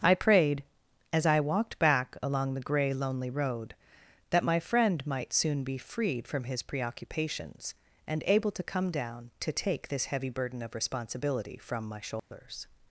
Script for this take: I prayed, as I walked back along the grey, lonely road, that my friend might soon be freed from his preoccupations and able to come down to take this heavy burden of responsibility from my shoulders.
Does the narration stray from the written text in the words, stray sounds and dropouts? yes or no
yes